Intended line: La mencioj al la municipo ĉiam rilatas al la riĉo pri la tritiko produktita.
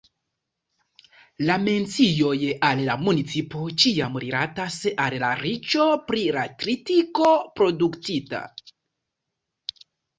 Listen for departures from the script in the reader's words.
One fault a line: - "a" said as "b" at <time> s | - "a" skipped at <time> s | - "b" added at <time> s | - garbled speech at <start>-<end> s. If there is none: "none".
none